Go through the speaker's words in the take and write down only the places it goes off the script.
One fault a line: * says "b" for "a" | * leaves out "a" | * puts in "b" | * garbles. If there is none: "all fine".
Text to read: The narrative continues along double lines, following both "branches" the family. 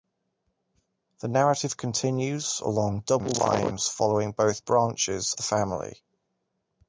all fine